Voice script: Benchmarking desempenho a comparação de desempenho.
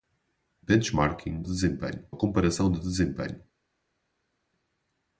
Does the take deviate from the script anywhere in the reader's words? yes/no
no